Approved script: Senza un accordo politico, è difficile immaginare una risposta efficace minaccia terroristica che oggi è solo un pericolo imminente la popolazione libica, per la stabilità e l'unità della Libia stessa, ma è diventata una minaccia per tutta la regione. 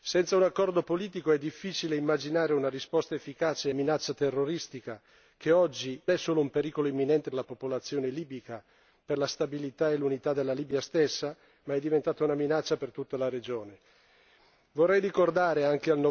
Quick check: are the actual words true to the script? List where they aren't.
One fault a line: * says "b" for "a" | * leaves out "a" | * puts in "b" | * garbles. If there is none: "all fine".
all fine